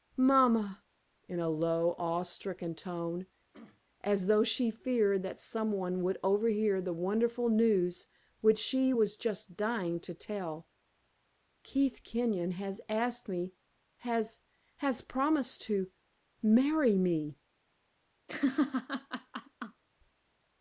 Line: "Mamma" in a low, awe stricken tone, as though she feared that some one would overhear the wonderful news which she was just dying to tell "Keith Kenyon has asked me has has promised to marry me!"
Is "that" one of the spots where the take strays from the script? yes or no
no